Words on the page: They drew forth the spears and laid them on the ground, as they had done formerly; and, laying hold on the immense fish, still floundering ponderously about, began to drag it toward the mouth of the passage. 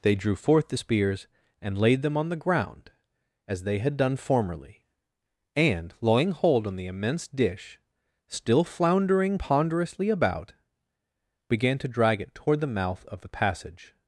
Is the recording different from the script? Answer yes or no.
yes